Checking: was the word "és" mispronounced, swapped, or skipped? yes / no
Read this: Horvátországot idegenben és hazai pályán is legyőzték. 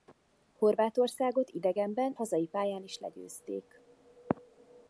yes